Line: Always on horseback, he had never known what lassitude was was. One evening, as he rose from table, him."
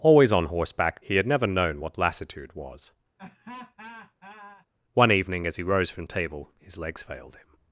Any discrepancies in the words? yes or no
yes